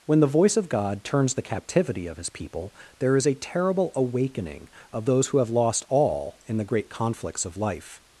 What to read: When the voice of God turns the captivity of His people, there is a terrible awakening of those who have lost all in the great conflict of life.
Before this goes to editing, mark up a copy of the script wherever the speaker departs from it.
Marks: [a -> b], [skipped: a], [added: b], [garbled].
When the voice of God turns the captivity of His people, there is a terrible awakening of those who have lost all in the great [conflict -> conflicts] of life.